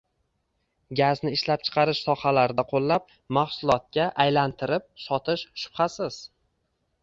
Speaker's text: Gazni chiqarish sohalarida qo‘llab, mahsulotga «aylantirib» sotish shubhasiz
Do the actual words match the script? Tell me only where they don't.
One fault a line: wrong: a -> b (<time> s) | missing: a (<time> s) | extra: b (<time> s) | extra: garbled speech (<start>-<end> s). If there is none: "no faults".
extra: ishlab (1.4 s)